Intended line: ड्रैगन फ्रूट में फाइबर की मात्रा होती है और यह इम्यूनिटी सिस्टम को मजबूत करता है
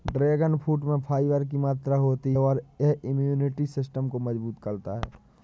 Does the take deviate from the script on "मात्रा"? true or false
false